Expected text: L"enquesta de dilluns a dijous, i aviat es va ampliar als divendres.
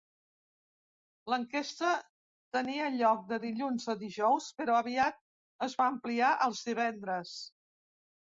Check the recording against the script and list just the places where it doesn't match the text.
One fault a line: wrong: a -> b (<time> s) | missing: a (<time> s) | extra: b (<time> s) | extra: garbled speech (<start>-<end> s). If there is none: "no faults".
extra: tenia lloc (2.6 s)
wrong: i -> però (4.6 s)